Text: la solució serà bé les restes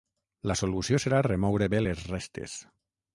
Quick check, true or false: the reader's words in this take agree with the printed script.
false